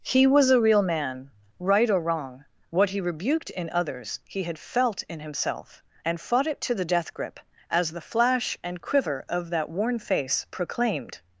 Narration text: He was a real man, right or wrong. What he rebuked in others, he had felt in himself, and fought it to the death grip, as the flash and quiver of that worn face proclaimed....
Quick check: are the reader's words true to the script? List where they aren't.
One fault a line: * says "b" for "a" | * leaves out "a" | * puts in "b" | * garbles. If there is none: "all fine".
all fine